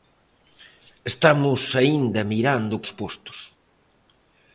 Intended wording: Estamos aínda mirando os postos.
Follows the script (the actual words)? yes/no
yes